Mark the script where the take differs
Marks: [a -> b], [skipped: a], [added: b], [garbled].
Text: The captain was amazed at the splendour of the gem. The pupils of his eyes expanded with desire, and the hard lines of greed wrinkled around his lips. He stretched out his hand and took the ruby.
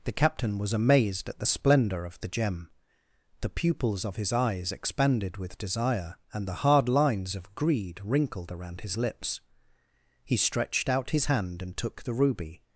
The captain was amazed at the splendour of the gem. The pupils of his eyes expanded with desire, and the hard lines of greed wrinkled around his lips. He stretched out his hand and took the ruby.